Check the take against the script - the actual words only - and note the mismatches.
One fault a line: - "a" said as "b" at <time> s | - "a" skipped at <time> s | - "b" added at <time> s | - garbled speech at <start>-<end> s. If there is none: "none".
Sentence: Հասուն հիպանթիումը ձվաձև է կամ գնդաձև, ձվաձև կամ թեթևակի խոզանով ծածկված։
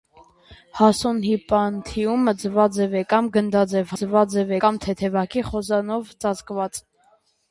none